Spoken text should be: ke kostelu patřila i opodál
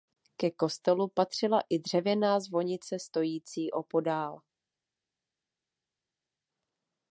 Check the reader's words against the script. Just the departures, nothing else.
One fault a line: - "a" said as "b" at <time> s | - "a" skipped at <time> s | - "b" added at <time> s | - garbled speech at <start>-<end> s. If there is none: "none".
- "dřevěná zvonice stojící" added at 1.8 s